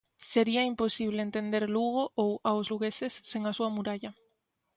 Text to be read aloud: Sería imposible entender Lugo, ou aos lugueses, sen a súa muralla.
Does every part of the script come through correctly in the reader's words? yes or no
yes